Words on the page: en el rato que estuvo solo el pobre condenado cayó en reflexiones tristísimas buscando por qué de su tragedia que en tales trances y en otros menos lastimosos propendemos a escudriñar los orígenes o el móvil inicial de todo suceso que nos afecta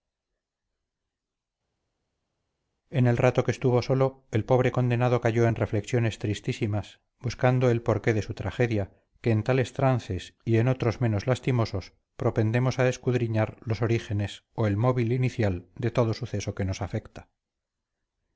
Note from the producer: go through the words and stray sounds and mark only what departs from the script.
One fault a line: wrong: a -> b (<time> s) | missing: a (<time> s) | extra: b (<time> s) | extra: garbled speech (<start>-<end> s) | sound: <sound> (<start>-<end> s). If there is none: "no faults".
extra: el (7.7 s)